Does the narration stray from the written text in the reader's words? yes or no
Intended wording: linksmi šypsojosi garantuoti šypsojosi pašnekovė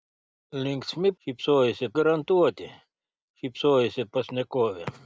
no